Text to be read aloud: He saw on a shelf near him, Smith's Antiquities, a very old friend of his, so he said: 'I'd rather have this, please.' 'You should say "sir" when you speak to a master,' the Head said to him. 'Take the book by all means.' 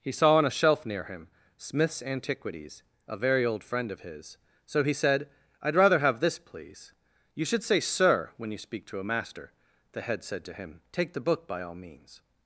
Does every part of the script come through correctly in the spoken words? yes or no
yes